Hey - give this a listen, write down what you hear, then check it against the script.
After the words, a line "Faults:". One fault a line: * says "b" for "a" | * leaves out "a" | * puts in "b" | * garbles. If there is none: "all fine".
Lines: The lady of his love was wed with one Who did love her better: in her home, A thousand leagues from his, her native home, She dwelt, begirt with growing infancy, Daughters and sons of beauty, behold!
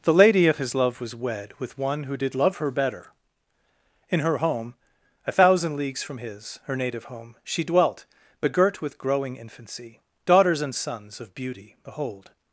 The lady of his love was wed with one Who did love her better: in her home, A thousand leagues from his, her native home, She dwelt, begirt with growing infancy, Daughters and sons of beauty, behold!
Faults:
all fine